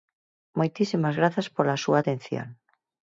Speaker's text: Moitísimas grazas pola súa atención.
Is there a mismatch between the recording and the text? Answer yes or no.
no